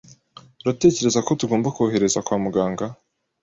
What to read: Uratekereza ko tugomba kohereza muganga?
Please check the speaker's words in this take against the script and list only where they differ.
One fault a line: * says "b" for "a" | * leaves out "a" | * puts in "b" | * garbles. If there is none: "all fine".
* puts in "kwa"